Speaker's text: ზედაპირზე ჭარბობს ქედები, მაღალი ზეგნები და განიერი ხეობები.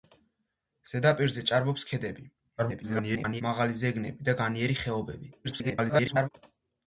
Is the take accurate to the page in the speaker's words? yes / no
no